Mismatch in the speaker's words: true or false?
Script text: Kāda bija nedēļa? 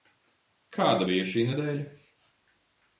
true